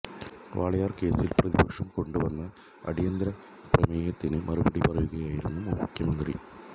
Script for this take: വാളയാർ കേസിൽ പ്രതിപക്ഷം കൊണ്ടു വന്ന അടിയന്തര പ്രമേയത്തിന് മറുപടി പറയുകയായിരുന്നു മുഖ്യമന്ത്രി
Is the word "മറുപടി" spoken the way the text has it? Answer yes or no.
yes